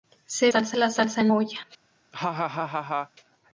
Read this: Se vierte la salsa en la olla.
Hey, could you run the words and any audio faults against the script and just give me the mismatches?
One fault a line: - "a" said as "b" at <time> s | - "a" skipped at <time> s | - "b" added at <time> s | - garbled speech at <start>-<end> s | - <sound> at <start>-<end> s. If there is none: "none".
- "vierte" said as "salsa" at 0.5 s
- "la" skipped at 1.3 s
- laugh at 2.1-3.1 s